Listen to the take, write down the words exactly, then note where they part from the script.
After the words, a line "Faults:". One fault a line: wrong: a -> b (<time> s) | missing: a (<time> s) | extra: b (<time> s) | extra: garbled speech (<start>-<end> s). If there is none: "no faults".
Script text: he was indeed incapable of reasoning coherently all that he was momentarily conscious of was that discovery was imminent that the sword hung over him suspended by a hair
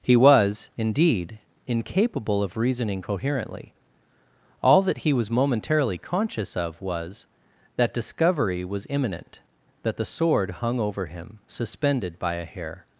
he was indeed incapable of reasoning coherently all that he was momentarily conscious of was that discovery was imminent that the sword hung over him suspended by a hair
Faults:
no faults